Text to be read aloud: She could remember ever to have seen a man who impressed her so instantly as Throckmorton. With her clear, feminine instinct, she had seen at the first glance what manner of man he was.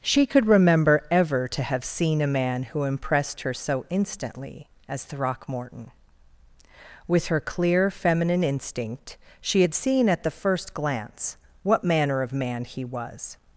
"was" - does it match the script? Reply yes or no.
yes